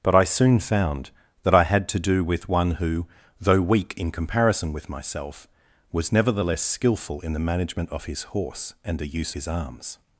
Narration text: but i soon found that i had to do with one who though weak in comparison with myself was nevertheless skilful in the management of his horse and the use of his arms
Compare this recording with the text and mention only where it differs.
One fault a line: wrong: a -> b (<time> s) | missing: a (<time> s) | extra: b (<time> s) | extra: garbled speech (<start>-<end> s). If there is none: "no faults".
missing: of (9.3 s)